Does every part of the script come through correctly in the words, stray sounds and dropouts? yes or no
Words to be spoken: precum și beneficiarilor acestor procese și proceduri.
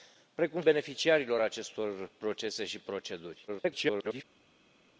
no